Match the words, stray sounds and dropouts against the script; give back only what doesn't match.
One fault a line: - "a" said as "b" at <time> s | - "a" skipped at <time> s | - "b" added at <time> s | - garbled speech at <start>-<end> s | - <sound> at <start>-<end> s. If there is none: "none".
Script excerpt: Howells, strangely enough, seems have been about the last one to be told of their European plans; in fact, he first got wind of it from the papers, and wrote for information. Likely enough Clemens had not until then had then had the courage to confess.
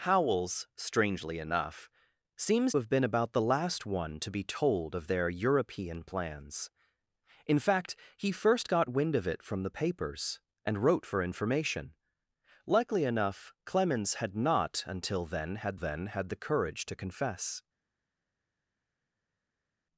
none